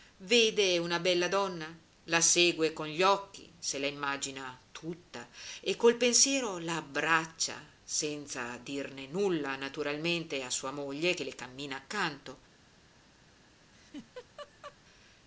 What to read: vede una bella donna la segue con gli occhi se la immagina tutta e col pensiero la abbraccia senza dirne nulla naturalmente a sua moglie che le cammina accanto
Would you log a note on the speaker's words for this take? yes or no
no